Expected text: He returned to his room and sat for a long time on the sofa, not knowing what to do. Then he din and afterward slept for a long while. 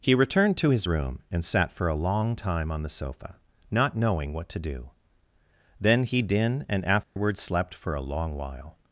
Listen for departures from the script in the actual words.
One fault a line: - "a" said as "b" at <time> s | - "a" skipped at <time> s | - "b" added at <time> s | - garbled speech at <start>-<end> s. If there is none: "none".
none